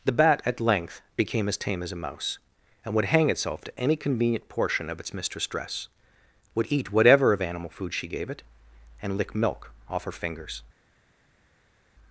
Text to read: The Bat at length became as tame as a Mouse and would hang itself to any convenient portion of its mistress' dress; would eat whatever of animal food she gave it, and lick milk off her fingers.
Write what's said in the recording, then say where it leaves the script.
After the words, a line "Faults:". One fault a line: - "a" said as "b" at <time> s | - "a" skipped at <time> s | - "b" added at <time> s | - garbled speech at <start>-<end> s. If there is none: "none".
The Bat at length became as tame as a Mouse and would hang itself to any convenient portion of its mistress' dress; would eat whatever of animal food she gave it, and lick milk off her fingers.
Faults:
none